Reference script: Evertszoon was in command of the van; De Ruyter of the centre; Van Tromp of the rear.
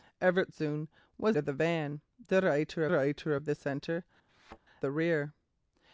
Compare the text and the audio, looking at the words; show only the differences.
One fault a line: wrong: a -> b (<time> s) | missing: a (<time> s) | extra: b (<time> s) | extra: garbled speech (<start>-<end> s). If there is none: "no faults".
missing: in command (1.4 s)
extra: Ruyter (2.9 s)
missing: Van Tromp of (4.1 s)